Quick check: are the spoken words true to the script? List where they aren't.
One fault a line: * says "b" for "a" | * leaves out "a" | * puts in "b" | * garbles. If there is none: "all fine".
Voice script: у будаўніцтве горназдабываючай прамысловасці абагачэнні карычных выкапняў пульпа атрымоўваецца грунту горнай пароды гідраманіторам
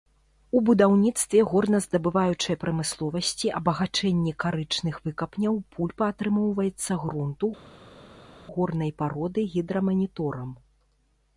all fine